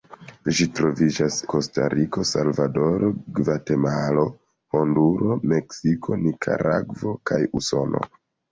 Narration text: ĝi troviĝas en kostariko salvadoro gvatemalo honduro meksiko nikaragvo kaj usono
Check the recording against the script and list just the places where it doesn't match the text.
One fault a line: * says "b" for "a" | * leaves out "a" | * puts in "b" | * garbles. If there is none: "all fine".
* leaves out "en"